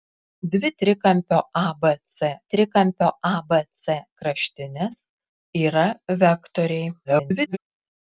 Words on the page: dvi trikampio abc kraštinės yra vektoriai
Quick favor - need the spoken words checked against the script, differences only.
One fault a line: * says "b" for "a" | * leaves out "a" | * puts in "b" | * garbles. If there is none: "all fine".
* puts in "trikampio abc"
* garbles